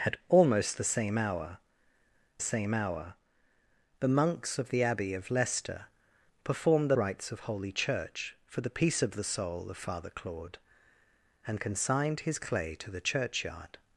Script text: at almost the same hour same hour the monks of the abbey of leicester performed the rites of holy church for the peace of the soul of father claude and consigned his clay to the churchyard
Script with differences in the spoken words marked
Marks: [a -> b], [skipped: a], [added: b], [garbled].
at almost the same hour same hour the monks of the abbey of leicester performed the rites of holy church for the peace of the soul of father claude and consigned his clay to the churchyard